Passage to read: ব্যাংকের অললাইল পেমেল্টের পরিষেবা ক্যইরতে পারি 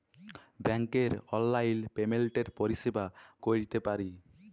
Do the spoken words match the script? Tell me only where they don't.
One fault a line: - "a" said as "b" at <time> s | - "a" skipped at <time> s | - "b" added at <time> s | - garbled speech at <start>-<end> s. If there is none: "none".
none